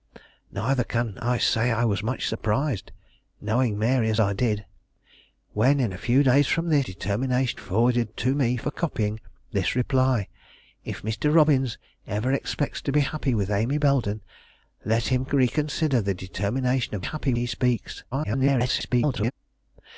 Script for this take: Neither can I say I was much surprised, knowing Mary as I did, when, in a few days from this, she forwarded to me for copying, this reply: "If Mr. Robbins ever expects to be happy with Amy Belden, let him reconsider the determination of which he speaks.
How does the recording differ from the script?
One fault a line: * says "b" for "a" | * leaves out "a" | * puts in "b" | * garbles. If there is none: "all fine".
* says "determination" for "she"
* says "happy" for "which"
* garbles